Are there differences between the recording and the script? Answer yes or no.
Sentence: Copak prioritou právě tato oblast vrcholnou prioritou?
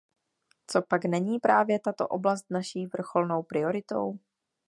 yes